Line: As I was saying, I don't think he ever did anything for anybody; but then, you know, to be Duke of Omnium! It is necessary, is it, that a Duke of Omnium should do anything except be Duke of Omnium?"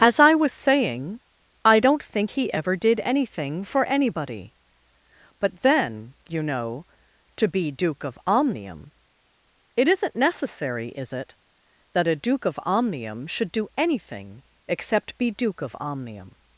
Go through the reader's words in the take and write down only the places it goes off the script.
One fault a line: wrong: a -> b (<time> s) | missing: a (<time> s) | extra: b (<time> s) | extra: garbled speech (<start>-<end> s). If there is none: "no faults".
wrong: is -> isn't (9.9 s)